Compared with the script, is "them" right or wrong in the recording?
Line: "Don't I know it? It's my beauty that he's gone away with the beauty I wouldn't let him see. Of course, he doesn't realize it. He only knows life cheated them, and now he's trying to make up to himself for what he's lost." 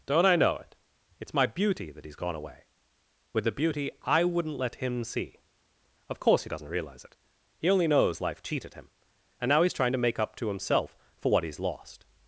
wrong